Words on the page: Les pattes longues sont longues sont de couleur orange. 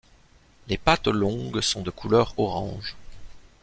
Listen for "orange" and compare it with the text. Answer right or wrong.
right